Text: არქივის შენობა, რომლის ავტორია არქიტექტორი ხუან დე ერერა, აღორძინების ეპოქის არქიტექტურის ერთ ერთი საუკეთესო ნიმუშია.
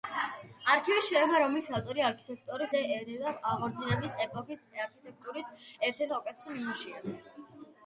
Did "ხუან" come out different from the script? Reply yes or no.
yes